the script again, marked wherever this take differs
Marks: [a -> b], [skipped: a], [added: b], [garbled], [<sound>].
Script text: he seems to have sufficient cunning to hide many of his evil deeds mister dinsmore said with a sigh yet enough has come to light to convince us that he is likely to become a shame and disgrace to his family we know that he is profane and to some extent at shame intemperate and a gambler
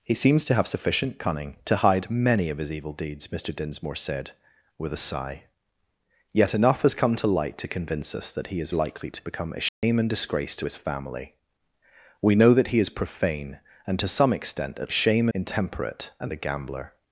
he seems to have sufficient cunning to hide many of his evil deeds mister dinsmore said with a sigh yet enough has come to light to convince us that he is likely to become a shame [dropout] and disgrace to his family we know that he is profane and to some extent at shame intemperate and a gambler